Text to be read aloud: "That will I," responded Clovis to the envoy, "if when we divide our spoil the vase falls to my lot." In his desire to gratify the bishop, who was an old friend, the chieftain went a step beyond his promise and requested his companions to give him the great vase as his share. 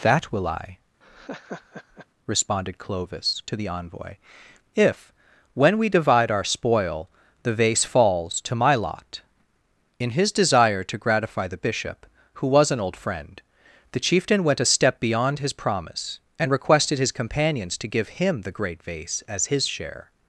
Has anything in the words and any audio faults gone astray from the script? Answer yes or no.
yes